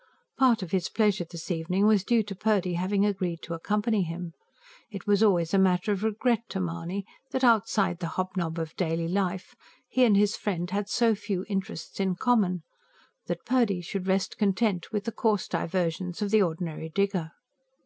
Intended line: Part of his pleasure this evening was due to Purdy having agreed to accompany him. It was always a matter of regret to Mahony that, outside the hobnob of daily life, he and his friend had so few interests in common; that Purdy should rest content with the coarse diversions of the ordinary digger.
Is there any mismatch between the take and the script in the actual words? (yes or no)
no